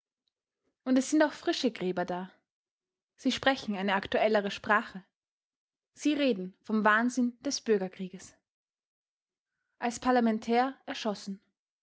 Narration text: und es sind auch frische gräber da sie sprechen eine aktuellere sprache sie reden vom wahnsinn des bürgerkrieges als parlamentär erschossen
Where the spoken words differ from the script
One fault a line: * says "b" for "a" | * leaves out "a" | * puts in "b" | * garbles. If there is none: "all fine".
all fine